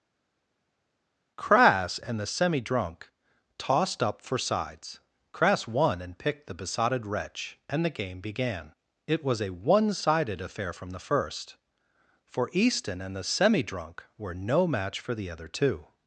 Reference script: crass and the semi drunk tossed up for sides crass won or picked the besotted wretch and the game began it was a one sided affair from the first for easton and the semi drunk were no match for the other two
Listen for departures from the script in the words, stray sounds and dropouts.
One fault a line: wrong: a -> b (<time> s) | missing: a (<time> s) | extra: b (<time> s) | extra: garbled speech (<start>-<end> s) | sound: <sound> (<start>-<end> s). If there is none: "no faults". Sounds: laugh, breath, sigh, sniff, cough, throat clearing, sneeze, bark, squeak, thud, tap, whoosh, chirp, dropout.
wrong: or -> and (6.0 s)